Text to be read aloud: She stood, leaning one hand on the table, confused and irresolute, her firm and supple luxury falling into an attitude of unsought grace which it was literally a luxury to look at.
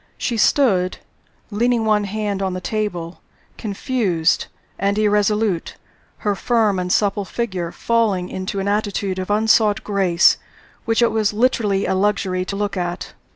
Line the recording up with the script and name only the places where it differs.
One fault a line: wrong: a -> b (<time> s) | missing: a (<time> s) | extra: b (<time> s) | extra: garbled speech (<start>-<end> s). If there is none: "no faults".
wrong: luxury -> figure (7.2 s)